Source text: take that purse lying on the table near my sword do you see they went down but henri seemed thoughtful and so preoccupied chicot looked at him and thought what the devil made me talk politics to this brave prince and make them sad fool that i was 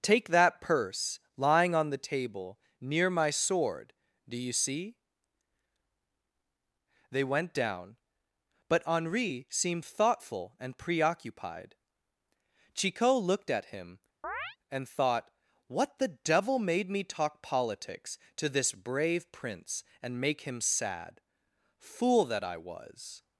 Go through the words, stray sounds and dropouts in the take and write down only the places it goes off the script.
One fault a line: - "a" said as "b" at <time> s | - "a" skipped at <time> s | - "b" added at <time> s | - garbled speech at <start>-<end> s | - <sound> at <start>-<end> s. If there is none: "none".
- "so" skipped at 10.8 s
- chirp at 14.2-14.6 s
- "them" said as "him" at 20.4 s